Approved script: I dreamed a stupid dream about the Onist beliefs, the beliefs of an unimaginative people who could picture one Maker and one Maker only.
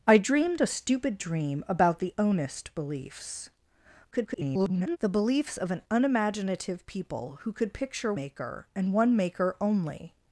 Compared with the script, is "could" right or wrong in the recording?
right